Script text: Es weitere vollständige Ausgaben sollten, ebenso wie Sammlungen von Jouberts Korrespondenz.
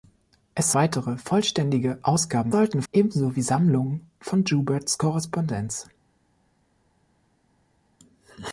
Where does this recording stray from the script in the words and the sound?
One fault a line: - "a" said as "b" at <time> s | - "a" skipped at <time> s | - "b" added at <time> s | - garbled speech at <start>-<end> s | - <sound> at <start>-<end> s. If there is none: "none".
none